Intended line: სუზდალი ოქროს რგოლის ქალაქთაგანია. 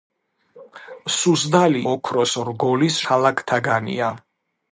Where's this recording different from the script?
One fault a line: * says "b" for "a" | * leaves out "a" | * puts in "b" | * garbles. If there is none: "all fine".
all fine